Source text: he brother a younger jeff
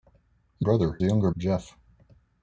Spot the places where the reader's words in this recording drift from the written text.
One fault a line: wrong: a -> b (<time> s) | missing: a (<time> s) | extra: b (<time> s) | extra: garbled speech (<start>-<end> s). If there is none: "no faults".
no faults